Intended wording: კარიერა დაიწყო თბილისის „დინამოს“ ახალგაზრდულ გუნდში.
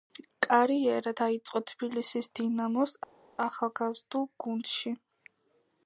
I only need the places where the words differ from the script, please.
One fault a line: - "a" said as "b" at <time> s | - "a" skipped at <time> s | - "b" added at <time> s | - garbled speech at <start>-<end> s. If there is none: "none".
none